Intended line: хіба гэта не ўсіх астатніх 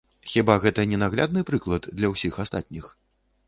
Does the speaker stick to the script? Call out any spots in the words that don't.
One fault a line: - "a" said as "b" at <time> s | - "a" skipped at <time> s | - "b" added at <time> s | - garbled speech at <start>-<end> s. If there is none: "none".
- "наглядны прыклад для" added at 1.0 s